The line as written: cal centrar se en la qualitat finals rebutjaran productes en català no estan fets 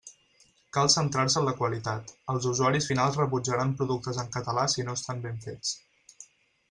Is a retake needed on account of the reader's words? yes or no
yes